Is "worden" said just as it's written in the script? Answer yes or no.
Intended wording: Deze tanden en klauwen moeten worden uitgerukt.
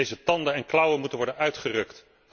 yes